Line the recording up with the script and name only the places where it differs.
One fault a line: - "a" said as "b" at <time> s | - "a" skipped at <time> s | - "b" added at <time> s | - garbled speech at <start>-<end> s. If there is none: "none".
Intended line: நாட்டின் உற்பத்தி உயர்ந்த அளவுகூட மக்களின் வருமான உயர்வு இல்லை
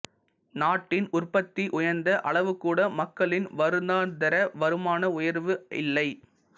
- "வருடாந்தர" added at 3.6 s